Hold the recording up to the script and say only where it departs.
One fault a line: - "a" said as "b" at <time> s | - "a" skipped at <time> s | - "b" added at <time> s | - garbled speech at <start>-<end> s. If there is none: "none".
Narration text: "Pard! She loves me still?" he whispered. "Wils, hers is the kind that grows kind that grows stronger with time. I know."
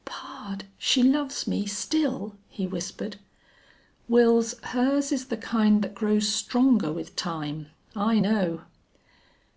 - "kind that grows" skipped at 6.3 s